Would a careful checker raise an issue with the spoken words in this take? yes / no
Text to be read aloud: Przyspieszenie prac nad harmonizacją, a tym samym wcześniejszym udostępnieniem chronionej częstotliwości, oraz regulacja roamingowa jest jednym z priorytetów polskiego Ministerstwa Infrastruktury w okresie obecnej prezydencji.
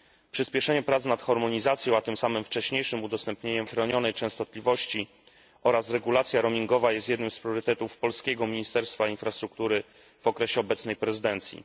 no